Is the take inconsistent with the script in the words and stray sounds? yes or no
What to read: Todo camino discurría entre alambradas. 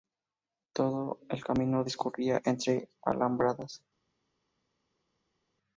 yes